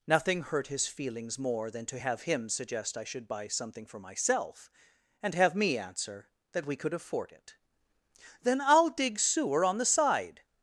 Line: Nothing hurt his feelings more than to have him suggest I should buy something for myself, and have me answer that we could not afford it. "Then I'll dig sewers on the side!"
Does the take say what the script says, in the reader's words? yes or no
no